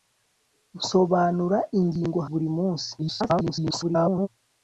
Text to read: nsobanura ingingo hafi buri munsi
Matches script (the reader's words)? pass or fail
fail